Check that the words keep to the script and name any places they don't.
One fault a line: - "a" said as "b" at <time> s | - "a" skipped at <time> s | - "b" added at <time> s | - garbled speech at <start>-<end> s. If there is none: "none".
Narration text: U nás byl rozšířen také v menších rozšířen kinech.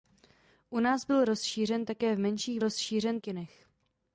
none